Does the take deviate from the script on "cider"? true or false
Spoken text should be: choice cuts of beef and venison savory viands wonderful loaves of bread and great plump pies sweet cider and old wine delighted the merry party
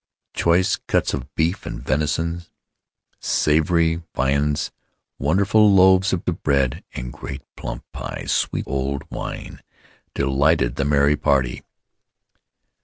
true